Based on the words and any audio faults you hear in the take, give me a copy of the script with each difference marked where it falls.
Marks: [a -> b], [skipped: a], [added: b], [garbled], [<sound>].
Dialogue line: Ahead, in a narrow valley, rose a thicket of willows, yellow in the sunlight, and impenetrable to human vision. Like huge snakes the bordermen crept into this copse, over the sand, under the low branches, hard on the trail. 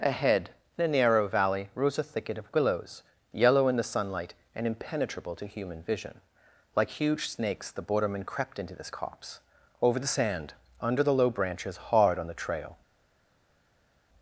Ahead, in a narrow valley, rose a thicket of willows, yellow in the sunlight, and impenetrable to human vision. Like huge snakes the bordermen crept into this copse, over the sand, under the low branches, hard on the trail.